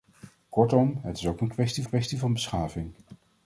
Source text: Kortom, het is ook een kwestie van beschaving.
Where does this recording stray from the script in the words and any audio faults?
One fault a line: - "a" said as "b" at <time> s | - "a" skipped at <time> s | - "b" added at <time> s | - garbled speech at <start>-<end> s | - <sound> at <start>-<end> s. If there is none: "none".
- "kwestie" added at 1.8 s